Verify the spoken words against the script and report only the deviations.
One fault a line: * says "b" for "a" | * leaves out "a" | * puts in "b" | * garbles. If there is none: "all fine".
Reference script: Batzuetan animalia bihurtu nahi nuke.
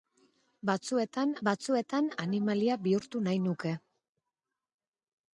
* puts in "batzuetan"